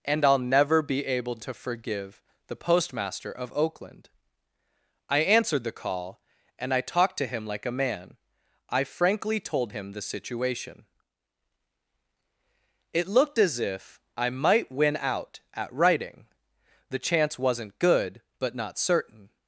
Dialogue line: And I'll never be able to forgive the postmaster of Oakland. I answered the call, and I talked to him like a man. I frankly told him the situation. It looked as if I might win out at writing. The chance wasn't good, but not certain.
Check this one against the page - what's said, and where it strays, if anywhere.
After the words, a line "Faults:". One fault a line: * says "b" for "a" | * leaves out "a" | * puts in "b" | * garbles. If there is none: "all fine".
And I'll never be able to forgive the postmaster of Oakland. I answered the call, and I talked to him like a man. I frankly told him the situation. It looked as if I might win out at writing. The chance wasn't good, but not certain.
Faults:
all fine